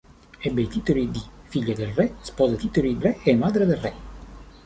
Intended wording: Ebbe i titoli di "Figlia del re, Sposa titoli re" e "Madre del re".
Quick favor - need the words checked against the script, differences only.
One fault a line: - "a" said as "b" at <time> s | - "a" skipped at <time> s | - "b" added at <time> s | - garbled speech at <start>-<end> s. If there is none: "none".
none